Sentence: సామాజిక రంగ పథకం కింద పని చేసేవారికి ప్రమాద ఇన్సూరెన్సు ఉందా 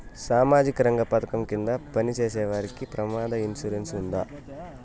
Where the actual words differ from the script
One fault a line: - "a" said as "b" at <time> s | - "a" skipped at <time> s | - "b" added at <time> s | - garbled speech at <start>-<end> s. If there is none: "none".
none